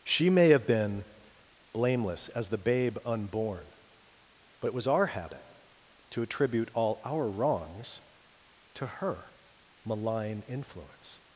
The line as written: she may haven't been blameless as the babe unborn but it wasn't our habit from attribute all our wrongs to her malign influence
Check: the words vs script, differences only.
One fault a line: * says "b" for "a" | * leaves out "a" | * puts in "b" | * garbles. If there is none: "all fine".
* says "have" for "haven't"
* says "was" for "wasn't"
* says "to" for "from"